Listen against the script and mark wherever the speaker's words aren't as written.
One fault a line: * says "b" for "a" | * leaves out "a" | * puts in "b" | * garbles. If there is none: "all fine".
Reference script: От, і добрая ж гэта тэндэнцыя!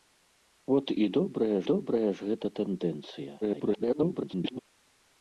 * puts in "добрая"
* garbles